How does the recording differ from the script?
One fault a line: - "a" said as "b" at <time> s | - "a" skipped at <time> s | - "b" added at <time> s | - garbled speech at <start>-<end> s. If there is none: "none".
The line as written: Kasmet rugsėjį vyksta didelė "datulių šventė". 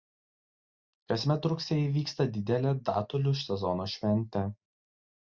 - "sezono" added at 3.4 s